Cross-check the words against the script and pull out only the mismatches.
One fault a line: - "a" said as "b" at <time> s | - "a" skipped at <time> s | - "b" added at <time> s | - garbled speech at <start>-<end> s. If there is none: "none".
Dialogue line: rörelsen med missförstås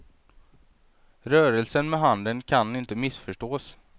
- "handen kan inte" added at 2.0 s